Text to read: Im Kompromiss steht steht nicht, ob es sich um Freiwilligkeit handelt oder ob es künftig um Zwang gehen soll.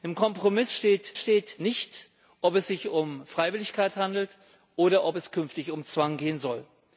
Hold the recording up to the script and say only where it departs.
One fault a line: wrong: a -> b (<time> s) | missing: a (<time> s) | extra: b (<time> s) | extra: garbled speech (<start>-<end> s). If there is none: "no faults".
no faults